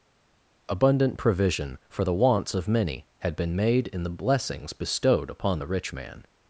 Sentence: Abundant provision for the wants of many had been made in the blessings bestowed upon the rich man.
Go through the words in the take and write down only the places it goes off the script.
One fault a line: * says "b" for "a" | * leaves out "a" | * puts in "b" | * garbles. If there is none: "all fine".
all fine